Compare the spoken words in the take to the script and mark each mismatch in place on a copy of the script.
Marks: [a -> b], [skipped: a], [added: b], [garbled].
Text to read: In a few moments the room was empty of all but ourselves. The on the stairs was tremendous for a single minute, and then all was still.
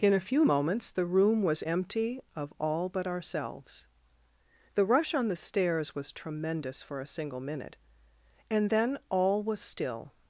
In a few moments the room was empty of all but ourselves. The [added: rush] on the stairs was tremendous for a single minute, and then all was still.